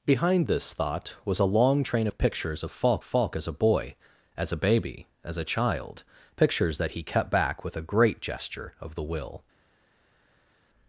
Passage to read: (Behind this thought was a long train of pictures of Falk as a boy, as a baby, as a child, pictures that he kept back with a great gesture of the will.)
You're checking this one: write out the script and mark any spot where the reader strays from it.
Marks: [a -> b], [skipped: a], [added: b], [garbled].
(Behind this thought was a long train of pictures of Falk [added: Falk] as a boy, as a baby, as a child, pictures that he kept back with a great gesture of the will.)